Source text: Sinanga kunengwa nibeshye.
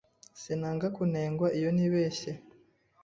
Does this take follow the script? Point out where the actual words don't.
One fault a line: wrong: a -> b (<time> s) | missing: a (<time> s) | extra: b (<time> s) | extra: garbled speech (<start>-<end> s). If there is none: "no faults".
extra: iyo (1.6 s)